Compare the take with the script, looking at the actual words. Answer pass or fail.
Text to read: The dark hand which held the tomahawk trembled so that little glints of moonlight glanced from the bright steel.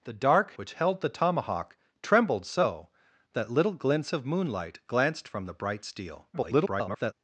fail